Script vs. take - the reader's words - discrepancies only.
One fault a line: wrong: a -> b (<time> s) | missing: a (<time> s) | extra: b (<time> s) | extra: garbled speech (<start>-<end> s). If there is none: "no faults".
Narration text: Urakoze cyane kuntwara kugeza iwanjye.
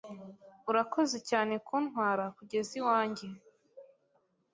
no faults